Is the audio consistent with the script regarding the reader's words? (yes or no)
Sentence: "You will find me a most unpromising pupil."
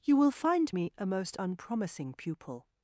yes